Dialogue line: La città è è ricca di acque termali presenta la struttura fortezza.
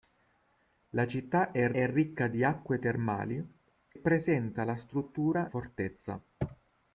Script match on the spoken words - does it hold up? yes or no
yes